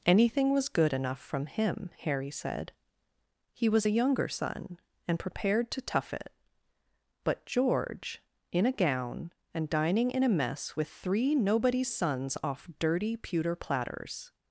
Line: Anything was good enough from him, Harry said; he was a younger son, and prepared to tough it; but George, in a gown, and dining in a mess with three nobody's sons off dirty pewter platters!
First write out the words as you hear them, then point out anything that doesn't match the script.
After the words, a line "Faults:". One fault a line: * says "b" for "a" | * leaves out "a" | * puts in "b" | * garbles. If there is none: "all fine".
Anything was good enough from him, Harry said; he was a younger son, and prepared to tough it; but George, in a gown, and dining in a mess with three nobody's sons off dirty pewter platters!
Faults:
all fine